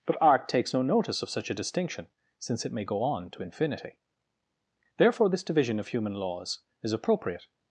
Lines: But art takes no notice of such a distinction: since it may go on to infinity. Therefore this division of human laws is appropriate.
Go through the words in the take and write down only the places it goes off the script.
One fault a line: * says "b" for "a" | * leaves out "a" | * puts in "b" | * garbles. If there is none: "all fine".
all fine